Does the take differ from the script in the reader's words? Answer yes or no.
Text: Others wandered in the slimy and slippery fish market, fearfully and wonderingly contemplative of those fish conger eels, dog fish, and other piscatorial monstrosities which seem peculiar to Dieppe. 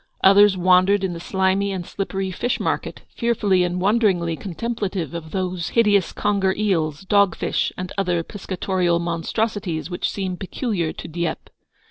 yes